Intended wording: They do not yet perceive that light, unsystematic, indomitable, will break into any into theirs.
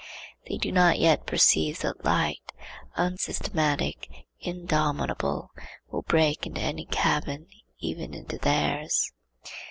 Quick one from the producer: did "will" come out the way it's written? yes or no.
yes